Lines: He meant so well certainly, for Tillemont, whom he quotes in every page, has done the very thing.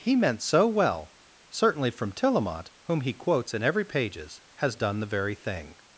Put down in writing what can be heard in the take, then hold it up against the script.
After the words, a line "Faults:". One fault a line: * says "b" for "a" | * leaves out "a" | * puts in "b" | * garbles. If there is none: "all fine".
He meant so well certainly, from Tillemont, whom he quotes in every pages, has done the very thing.
Faults:
* says "from" for "for"
* says "pages" for "page"